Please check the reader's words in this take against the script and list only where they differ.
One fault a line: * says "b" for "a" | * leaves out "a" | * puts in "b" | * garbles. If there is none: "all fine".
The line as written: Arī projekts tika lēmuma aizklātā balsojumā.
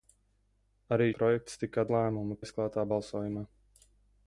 all fine